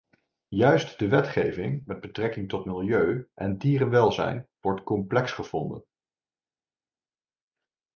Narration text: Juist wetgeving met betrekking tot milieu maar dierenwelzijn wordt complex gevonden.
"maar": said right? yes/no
no